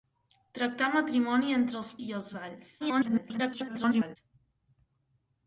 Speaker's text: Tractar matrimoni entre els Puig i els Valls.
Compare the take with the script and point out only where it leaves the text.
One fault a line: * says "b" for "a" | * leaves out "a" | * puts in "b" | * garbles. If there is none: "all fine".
* leaves out "Puig"
* garbles